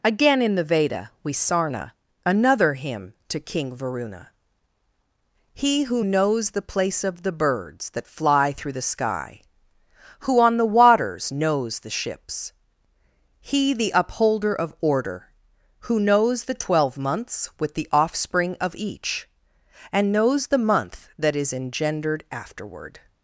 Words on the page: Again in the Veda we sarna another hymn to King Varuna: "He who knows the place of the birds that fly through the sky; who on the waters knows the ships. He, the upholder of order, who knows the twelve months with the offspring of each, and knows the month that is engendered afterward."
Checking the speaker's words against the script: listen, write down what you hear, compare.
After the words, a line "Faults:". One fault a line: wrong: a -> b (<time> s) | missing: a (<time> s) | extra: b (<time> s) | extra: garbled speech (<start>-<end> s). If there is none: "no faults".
Again in the Veda we sarna another hymn to King Varuna: "He who knows the place of the birds that fly through the sky; who on the waters knows the ships. He, the upholder of order, who knows the twelve months with the offspring of each, and knows the month that is engendered afterward."
Faults:
no faults